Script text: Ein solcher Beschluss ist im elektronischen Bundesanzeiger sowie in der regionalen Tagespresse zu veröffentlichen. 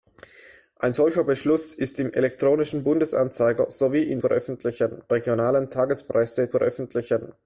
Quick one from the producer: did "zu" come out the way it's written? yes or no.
no